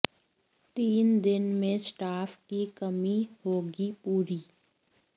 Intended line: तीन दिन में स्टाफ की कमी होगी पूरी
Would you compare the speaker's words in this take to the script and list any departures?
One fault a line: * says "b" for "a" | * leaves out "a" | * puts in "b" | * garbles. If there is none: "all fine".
all fine